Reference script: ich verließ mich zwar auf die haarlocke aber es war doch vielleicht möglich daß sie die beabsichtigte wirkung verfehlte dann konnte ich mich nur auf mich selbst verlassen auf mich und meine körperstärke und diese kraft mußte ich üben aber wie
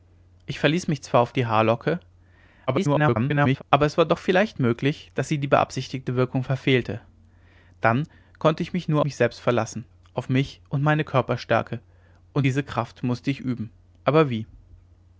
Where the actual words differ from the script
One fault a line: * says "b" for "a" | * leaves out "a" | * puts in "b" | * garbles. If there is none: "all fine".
* garbles
* leaves out "auf"